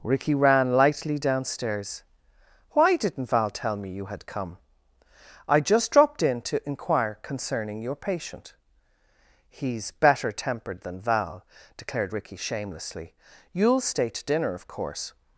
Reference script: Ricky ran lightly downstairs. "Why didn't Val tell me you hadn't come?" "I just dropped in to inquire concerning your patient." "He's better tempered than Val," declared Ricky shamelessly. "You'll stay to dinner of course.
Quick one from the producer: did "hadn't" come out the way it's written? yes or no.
no